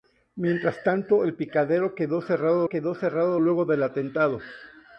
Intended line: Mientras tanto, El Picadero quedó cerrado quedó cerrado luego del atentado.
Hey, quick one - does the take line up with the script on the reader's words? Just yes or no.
yes